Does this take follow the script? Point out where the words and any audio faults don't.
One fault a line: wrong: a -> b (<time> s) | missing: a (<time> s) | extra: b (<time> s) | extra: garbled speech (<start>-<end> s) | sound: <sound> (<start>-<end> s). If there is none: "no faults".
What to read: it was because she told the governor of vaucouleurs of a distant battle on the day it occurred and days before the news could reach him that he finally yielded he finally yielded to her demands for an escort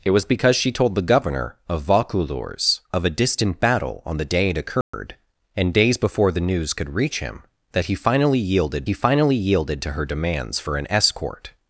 sound: dropout (4.8-4.9 s)